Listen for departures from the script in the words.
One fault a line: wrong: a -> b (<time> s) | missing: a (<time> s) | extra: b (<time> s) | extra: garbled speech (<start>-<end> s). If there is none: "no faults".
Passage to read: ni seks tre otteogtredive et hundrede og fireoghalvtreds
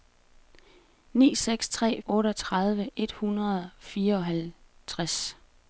no faults